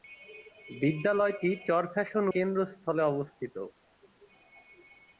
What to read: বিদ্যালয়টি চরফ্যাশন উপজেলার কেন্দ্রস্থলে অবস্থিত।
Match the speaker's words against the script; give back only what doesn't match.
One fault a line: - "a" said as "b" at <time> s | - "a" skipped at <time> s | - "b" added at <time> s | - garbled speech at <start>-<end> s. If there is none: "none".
- "উপজেলার" skipped at 2.2 s